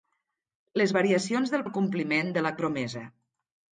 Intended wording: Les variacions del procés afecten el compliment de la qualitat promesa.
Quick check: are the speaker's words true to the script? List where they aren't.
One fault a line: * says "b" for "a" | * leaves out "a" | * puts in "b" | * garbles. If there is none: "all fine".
* leaves out "procés afecten"
* leaves out "qualitat"